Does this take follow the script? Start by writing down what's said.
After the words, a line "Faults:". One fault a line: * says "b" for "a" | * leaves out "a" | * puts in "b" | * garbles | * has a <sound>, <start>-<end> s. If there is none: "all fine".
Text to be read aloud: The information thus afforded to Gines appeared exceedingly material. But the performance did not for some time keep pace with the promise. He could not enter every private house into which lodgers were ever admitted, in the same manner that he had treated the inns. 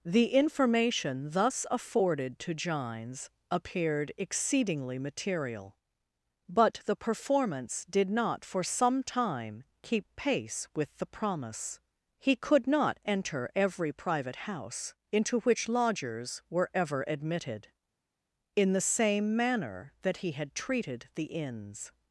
The information thus afforded to Gines appeared exceedingly material. But the performance did not for some time keep pace with the promise. He could not enter every private house into which lodgers were ever admitted, in the same manner that he had treated the inns.
Faults:
all fine